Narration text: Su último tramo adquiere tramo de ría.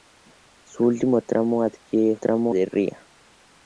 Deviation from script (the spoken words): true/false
false